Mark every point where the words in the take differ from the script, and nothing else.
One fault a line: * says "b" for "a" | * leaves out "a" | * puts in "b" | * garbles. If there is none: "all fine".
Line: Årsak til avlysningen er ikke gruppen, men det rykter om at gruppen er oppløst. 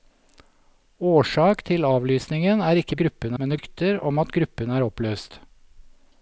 all fine